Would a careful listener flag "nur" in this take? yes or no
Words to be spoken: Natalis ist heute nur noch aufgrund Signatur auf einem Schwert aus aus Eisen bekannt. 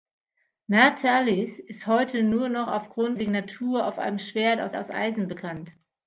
no